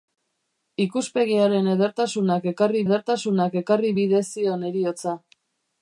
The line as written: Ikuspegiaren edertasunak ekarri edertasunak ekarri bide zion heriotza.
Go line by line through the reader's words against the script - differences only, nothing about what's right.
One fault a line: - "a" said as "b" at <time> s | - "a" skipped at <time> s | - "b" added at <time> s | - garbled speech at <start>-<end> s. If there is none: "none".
none